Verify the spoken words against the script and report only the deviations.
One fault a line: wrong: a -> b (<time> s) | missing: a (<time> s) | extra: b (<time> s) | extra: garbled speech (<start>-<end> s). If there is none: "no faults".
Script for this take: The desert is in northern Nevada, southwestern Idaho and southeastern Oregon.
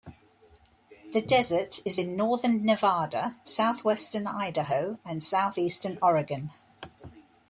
no faults